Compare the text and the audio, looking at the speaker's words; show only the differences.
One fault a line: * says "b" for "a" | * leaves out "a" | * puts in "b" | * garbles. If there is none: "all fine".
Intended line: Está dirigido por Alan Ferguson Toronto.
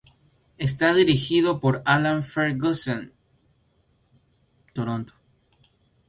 all fine